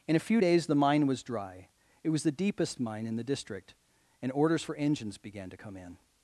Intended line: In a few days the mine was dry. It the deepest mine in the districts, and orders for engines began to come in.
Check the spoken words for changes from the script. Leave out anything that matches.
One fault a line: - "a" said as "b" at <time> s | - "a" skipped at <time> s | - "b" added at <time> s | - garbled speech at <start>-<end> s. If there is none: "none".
- "was" added at 2.1 s
- "districts" said as "district" at 3.2 s